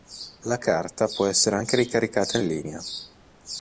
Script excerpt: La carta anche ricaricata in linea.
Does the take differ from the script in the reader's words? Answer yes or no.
yes